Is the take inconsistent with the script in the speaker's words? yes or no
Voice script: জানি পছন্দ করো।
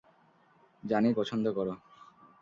no